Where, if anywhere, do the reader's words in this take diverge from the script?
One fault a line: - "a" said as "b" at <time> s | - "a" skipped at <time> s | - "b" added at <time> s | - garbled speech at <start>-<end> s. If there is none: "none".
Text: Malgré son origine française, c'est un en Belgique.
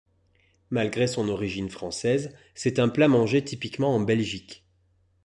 - "plat mangé typiquement" added at 2.9 s